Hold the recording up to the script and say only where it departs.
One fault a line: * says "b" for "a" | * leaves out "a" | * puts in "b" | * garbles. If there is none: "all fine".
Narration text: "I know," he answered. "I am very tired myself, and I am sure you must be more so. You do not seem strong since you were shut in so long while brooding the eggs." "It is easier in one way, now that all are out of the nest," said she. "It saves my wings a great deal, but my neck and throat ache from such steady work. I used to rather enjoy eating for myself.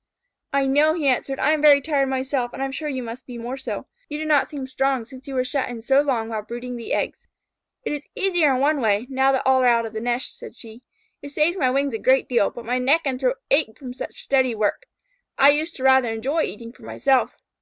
all fine